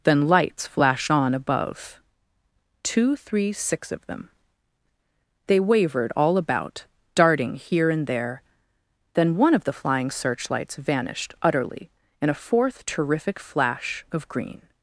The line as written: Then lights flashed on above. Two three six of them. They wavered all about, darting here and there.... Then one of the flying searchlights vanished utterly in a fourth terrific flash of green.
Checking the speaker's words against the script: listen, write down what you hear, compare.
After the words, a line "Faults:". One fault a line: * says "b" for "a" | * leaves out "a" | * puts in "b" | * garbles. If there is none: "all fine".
Then lights flashed on above. Two three six of them. They wavered all about, darting here and there.... Then one of the flying searchlights vanished utterly in a fourth terrific flash of green.
Faults:
all fine